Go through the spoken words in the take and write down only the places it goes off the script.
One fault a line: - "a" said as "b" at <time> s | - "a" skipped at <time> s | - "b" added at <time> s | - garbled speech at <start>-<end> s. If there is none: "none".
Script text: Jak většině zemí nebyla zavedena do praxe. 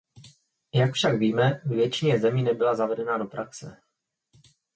- "však víme ve" added at 0.9 s